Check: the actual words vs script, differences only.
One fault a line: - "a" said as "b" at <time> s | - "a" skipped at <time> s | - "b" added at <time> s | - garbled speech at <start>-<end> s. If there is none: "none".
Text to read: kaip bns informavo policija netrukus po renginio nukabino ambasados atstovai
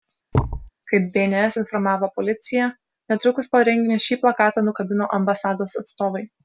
- "šį plakatą" added at 4.1 s